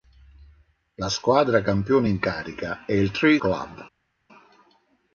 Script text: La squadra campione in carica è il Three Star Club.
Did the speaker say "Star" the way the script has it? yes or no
no